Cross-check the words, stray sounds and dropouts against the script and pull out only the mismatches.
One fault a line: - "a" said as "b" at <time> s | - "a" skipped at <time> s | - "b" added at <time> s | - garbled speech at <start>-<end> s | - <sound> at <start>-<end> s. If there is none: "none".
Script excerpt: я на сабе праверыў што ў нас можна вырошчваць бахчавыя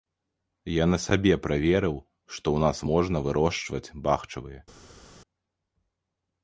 none